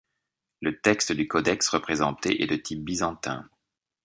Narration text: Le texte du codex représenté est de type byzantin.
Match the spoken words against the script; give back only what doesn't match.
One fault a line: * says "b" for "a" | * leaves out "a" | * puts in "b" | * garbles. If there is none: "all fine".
all fine